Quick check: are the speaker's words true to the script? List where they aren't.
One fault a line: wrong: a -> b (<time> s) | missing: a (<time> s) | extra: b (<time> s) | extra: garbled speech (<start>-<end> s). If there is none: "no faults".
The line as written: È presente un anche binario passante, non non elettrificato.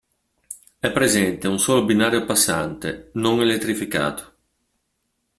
wrong: anche -> solo (1.6 s)
missing: non (3.4 s)